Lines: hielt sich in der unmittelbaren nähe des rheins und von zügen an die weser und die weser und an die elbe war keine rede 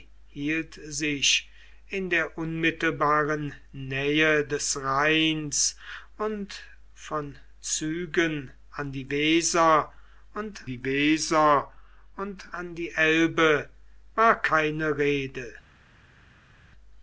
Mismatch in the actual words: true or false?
false